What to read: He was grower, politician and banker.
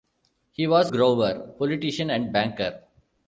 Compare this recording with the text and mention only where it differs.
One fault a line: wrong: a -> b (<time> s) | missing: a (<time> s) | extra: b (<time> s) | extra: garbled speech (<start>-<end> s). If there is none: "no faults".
no faults